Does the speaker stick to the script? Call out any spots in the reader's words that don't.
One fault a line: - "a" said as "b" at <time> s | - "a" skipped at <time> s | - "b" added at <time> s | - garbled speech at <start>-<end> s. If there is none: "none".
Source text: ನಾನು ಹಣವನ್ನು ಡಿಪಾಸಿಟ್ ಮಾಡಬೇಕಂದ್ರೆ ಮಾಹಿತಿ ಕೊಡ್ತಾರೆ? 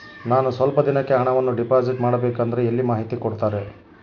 - "ಸ್ವಲ್ಪ ದಿನಕ್ಕೆ" added at 0.5 s
- "ಎಲ್ಲಿ" added at 2.7 s